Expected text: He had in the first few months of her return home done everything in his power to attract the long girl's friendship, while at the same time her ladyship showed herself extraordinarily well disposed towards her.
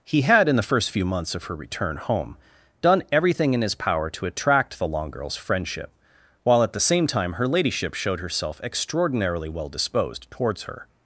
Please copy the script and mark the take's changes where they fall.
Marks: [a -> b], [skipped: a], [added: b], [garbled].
He had in the first few months of her return home done everything in his power to attract the long girl's friendship, while at the same time her ladyship showed herself extraordinarily well disposed towards her.